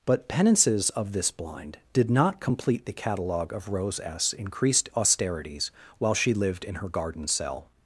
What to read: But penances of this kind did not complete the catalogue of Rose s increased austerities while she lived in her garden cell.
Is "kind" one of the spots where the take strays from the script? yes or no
yes